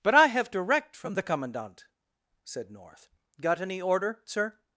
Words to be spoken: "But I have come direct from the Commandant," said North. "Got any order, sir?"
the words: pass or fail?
fail